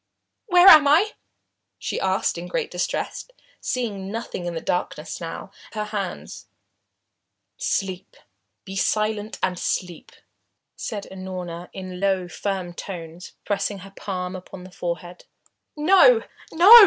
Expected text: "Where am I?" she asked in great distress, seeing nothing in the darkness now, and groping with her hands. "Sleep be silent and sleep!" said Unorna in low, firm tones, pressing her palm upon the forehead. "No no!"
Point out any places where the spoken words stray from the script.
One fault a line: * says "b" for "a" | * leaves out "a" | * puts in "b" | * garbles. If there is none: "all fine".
* leaves out "and groping with"